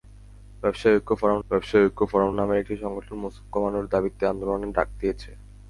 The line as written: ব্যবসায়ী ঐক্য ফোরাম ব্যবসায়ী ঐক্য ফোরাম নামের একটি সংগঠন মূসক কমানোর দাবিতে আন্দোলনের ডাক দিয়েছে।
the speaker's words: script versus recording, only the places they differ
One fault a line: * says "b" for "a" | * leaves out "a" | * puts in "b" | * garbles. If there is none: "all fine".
all fine